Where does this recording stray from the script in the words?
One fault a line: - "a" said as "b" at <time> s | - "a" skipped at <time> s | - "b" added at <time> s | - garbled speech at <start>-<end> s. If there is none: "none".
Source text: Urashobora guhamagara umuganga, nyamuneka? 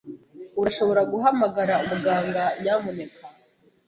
none